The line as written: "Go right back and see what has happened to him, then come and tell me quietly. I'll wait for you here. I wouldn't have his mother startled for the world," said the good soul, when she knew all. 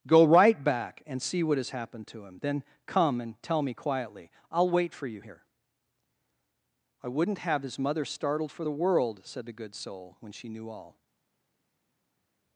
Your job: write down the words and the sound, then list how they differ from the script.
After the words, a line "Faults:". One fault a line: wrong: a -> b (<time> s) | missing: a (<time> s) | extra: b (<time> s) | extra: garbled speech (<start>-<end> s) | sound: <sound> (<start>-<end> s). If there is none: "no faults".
"Go right back and see what has happened to him, then come and tell me quietly. I'll wait for you here. I wouldn't have his mother startled for the world," said the good soul, when she knew all.
Faults:
no faults